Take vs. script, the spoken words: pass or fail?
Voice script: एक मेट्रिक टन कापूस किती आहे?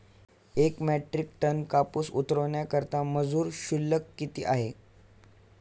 fail